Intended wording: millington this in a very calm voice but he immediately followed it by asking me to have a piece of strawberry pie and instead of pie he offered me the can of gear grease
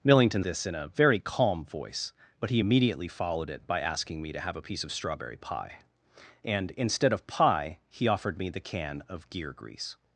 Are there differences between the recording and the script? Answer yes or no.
no